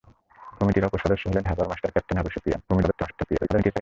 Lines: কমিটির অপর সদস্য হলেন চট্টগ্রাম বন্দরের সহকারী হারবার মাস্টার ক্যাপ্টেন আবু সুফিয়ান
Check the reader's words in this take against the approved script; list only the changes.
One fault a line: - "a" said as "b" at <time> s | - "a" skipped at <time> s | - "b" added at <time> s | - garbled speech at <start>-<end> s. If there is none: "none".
- "চট্টগ্রাম বন্দরের সহকারী" skipped at 1.4 s
- garbled speech at 2.7-3.8 s